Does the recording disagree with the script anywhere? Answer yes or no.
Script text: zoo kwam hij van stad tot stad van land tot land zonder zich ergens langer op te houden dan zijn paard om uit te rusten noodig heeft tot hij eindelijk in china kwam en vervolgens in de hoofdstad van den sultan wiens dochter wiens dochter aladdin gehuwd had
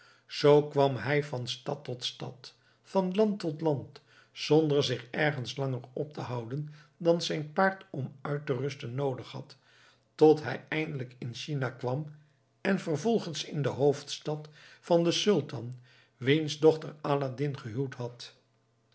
yes